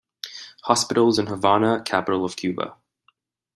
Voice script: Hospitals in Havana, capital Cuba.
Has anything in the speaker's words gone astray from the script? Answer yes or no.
yes